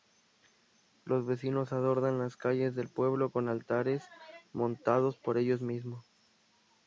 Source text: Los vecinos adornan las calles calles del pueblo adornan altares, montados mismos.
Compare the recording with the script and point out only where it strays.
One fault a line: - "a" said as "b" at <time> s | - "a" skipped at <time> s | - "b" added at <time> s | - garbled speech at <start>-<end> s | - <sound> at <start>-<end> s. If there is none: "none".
- "calles" skipped at 2.8 s
- "adornan" said as "con" at 3.3 s
- "por ellos" added at 5.2 s